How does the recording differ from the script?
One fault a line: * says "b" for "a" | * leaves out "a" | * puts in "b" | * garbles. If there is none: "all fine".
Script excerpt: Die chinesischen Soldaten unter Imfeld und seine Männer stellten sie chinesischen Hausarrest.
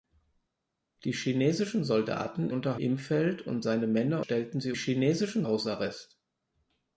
all fine